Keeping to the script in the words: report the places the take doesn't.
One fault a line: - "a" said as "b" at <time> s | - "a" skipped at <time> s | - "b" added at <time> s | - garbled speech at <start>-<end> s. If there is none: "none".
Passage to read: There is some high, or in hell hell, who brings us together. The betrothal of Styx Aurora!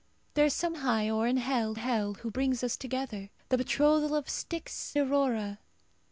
none